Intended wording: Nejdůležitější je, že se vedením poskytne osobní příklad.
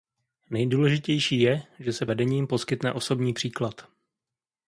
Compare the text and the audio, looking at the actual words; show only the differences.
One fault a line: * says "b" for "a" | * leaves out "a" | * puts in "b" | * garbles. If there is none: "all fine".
all fine